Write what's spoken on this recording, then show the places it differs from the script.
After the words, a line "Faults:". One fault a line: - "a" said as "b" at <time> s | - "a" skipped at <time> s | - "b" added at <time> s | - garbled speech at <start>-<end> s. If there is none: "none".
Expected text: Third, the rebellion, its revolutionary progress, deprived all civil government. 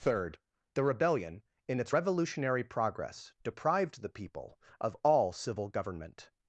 Third, the rebellion, in its revolutionary progress, deprived the people of all civil government.
Faults:
- "in" added at 1.7 s
- "the people of" added at 4.0 s